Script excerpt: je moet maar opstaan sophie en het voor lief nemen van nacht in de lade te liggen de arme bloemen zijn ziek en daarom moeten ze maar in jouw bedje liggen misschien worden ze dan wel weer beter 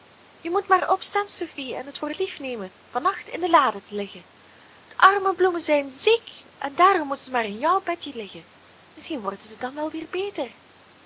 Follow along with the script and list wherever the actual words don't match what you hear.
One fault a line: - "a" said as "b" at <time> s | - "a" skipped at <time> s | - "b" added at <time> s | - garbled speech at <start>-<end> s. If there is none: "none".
none